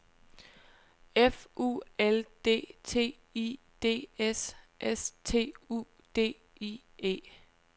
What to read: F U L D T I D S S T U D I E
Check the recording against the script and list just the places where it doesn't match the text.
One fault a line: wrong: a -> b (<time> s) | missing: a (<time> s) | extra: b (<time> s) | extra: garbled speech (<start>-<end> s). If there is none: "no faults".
no faults